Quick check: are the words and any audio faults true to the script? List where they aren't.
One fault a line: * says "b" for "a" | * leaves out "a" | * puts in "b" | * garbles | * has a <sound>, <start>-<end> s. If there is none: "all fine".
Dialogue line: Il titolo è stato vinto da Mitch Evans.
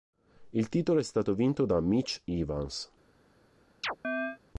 * has a chirp, 3.8-4.4 s